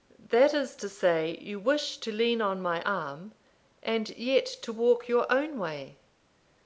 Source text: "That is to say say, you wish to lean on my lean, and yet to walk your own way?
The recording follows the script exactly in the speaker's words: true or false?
false